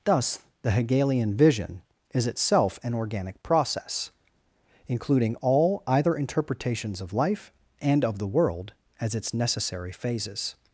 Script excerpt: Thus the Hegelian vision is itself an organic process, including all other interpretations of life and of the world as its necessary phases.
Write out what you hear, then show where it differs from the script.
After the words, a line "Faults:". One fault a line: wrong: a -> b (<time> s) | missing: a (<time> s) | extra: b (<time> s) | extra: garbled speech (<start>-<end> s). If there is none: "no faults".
Thus the Hegelian vision is itself an organic process, including all either interpretations of life and of the world as its necessary phases.
Faults:
wrong: other -> either (5.9 s)